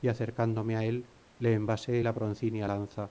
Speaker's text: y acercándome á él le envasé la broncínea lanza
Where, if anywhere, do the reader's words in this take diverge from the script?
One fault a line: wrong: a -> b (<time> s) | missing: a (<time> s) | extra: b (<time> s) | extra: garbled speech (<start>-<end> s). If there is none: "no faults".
no faults